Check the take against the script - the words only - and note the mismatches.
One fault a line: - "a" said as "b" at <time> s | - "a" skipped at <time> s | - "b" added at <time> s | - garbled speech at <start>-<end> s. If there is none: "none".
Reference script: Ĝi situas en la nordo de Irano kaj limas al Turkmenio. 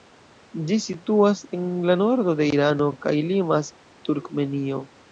- "al" skipped at 3.7 s